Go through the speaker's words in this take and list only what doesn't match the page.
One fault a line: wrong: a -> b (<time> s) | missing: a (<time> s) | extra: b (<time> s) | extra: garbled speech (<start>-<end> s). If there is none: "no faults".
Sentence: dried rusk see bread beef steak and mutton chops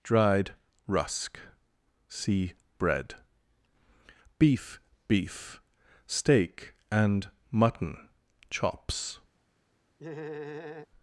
extra: beef (5.1 s)